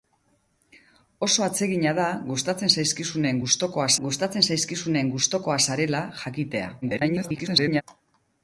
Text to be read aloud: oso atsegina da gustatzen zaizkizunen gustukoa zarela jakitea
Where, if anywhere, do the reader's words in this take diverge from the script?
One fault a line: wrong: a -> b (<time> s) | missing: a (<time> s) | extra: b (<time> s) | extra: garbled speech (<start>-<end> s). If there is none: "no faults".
extra: gustatzen zaizkizunen gustukoa (4.1 s)
extra: garbled speech (6.8-7.8 s)